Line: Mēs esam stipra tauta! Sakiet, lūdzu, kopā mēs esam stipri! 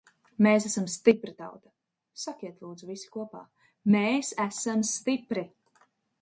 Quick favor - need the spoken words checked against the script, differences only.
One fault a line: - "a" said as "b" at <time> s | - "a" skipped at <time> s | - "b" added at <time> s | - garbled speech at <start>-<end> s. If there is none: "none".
- "visi" added at 2.9 s